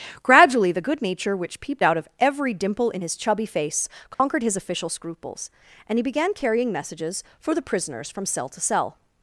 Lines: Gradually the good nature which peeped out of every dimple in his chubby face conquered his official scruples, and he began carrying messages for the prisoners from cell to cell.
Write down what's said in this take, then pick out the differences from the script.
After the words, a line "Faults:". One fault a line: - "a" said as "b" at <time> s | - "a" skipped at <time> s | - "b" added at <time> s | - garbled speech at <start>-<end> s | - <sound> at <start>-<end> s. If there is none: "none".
Gradually the good nature which peeped out of every dimple in his chubby face conquered his official scruples, and he began carrying messages for the prisoners from cell to cell.
Faults:
- dropout at 4.1-4.2 s